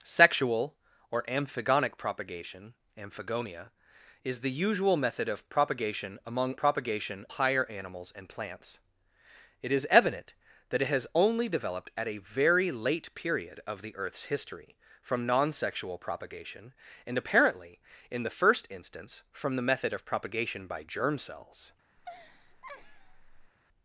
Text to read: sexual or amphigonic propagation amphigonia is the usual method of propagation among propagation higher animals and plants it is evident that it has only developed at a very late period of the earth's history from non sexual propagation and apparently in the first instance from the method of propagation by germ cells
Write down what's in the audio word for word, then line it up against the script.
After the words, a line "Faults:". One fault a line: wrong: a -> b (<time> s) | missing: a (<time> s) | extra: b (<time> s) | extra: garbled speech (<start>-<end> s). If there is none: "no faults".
sexual or amphigonic propagation amphigonia is the usual method of propagation among propagation higher animals and plants it is evident that it has only developed at a very late period of the earth's history from non sexual propagation and apparently in the first instance from the method of propagation by germ cells
Faults:
no faults